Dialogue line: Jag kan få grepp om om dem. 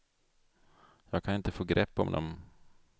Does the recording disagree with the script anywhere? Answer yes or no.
yes